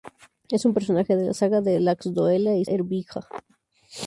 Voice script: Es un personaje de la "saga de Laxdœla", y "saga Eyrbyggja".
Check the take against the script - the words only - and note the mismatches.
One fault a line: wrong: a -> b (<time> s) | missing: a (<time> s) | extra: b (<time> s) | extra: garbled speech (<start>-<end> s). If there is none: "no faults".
missing: saga (2.6 s)